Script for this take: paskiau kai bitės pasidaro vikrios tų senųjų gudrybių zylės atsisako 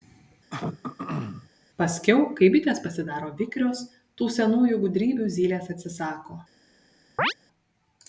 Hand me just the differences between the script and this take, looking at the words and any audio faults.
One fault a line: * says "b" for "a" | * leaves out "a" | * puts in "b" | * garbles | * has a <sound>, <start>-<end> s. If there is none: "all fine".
* has a throat clearing, 0.5-1.5 s
* has a chirp, 7.2-7.3 s